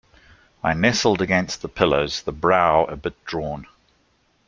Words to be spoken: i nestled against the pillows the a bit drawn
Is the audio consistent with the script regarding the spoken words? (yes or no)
no